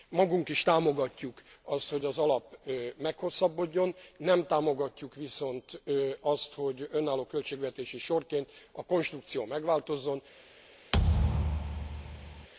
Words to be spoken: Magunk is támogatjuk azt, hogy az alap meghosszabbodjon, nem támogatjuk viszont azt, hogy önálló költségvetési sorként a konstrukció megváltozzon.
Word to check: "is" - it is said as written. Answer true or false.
true